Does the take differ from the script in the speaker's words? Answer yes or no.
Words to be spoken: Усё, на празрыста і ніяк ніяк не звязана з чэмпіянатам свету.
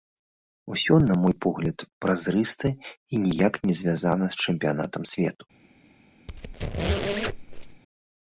yes